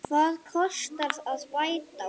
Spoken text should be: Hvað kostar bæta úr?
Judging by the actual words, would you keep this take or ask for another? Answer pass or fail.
fail